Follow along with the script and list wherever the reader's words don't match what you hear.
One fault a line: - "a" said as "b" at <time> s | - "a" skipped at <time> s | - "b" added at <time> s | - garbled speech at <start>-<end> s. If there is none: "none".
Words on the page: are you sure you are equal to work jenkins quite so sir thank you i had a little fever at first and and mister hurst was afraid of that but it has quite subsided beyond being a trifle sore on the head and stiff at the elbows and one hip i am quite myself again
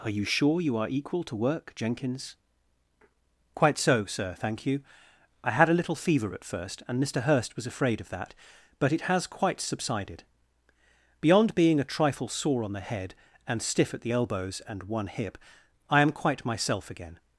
- "and" skipped at 7.0 s